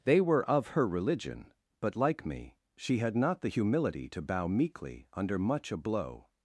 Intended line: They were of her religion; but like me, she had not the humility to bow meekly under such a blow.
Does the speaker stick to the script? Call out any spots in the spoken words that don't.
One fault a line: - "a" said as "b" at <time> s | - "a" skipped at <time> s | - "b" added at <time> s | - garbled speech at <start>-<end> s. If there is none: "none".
- "such" said as "much" at 5.4 s